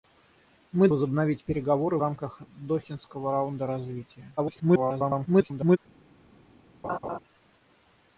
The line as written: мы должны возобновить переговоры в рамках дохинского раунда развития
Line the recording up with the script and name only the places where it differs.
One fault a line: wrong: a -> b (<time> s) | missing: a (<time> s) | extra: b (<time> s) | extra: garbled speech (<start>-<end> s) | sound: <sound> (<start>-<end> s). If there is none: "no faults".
missing: должны (0.9 s)
missing: в (2.0 s)
extra: garbled speech (4.4-5.8 s)
sound: laugh (6.8-7.2 s)